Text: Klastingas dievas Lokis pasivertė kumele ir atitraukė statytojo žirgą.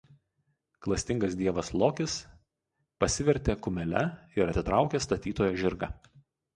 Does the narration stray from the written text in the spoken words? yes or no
no